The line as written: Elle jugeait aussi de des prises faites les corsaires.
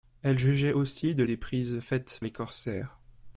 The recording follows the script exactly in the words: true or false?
true